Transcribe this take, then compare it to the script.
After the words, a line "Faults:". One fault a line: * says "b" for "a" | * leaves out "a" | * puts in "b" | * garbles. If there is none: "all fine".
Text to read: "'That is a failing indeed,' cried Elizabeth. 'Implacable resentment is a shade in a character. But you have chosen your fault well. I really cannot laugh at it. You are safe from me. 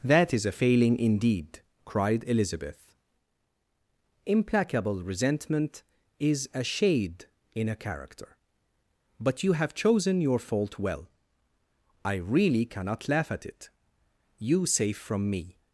"'That is a failing indeed,' cried Elizabeth. 'Implacable resentment is a shade in a character. But you have chosen your fault well. I really cannot laugh at it. You safe from me.
Faults:
* leaves out "are"